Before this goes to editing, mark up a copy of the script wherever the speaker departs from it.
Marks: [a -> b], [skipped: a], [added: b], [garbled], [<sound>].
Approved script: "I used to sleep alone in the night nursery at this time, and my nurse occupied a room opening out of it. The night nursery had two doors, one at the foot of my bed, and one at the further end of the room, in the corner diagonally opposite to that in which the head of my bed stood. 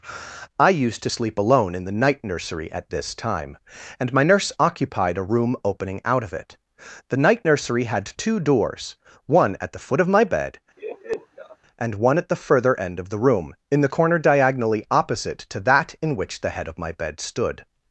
"I used to sleep alone in the night nursery at this time, and my nurse occupied a room opening out of it. The night nursery had two doors, one at the foot of my bed, [laugh] and one at the further end of the room, in the corner diagonally opposite to that in which the head of my bed stood.